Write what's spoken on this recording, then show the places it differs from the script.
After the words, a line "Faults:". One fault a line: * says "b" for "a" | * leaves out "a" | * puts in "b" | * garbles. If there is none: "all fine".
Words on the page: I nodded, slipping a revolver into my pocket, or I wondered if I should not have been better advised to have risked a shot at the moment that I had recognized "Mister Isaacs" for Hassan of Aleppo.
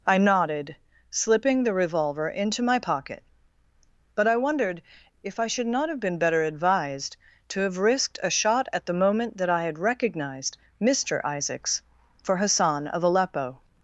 I nodded, slipping the revolver into my pocket, but I wondered if I should not have been better advised to have risked a shot at the moment that I had recognized "Mister Isaacs" for Hassan of Aleppo.
Faults:
* says "the" for "a"
* says "but" for "or"